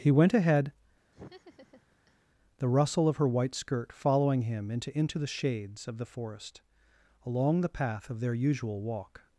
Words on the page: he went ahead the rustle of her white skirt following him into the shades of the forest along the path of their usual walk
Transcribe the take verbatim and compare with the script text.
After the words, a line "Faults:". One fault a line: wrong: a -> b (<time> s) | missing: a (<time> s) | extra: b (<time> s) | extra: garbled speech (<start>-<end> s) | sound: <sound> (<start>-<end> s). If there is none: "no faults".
he went ahead the rustle of her white skirt following him into into the shades of the forest along the path of their usual walk
Faults:
sound: laugh (1.1-2.3 s)
extra: into (5.0 s)